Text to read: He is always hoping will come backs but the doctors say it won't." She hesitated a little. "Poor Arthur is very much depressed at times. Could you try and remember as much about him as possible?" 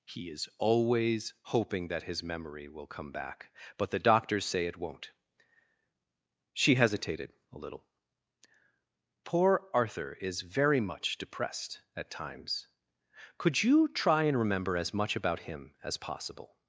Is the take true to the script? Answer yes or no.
no